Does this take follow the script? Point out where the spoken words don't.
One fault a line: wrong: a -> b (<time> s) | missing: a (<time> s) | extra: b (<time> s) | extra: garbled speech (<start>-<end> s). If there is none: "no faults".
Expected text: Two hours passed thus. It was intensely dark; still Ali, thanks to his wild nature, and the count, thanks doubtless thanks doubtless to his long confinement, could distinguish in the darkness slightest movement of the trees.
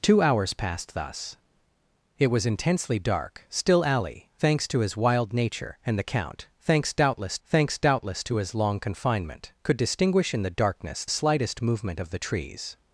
no faults